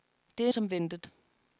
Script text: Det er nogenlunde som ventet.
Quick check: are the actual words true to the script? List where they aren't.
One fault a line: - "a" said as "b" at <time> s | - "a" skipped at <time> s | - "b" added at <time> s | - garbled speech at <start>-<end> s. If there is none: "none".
- "nogenlunde" skipped at 0.5 s